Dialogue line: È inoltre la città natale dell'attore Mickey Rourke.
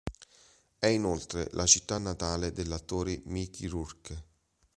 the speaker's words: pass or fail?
pass